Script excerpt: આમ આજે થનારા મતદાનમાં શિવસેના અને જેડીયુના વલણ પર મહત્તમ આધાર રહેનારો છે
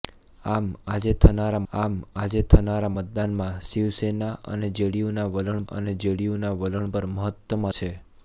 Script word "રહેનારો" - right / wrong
wrong